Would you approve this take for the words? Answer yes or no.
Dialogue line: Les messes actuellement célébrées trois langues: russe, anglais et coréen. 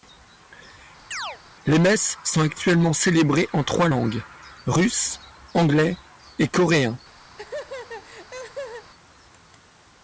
no